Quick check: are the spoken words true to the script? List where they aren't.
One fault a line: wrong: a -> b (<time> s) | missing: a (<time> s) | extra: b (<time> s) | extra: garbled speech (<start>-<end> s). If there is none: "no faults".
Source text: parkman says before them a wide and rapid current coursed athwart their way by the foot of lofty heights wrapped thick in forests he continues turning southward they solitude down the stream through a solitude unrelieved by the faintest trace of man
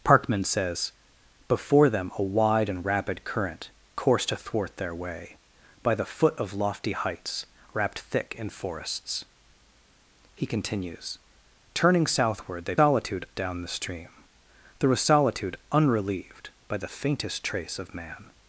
no faults